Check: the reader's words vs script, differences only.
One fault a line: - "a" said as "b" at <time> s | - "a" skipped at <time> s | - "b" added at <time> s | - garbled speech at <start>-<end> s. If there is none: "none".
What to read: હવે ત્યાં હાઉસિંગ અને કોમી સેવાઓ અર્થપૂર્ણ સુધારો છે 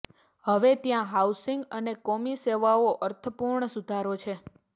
none